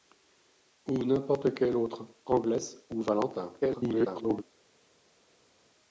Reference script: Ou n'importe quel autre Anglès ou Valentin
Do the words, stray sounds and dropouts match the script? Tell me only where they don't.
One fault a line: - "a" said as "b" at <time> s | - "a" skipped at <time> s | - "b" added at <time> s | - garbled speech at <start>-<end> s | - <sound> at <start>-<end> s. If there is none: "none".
- garbled speech at 3.6-4.4 s